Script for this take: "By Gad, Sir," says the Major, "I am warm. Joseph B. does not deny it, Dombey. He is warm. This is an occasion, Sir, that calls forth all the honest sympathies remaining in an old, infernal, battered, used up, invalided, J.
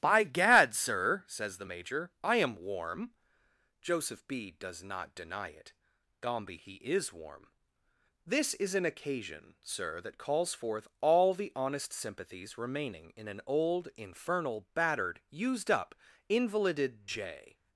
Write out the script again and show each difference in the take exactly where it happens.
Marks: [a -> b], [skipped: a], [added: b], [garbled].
"By Gad, Sir," says the Major, "I am warm. Joseph B. does not deny it, Dombey. He is warm. This is an occasion, Sir, that calls forth all the honest sympathies remaining in an old, infernal, battered, used up, invalided, J.